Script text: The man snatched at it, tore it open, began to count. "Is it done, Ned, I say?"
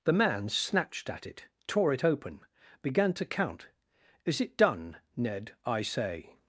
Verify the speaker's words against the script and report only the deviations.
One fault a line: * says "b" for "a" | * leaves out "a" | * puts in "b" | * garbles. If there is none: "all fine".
all fine